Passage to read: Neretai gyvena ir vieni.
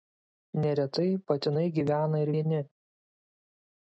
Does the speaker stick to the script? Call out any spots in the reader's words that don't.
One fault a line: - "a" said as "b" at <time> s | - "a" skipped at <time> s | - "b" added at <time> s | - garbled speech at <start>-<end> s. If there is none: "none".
- "patinai" added at 1.3 s